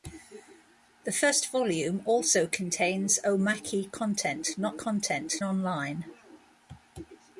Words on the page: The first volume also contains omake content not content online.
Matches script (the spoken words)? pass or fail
pass